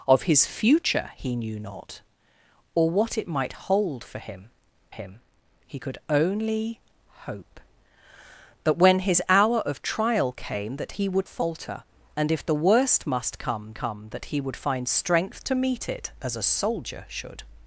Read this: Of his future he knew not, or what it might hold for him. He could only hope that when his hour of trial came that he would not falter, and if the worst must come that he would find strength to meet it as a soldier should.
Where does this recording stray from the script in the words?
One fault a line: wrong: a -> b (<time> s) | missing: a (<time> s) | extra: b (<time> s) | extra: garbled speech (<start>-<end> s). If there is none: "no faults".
extra: him (4.9 s)
missing: not (11.3 s)
extra: come (13.7 s)